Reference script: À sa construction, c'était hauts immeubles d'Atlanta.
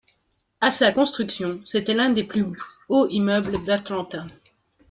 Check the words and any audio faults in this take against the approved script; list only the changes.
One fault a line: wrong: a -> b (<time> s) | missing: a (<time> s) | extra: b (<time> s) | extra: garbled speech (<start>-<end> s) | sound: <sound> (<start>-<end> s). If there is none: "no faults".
extra: l'un des plus (1.9 s)